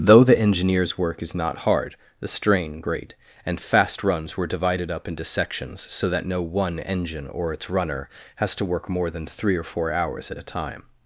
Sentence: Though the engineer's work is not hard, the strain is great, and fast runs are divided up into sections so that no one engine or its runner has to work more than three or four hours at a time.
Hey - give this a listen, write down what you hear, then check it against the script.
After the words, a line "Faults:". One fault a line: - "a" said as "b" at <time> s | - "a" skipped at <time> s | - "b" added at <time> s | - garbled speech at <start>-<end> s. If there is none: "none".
Though the engineer's work is not hard, the strain great, and fast runs were divided up into sections so that no one engine or its runner has to work more than three or four hours at a time.
Faults:
- "is" skipped at 2.8 s
- "are" said as "were" at 4.4 s